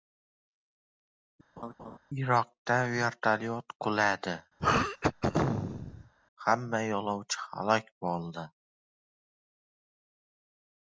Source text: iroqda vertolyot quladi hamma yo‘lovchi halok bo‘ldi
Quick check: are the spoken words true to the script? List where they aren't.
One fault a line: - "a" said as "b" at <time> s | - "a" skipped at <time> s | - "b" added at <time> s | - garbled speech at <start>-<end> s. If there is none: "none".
none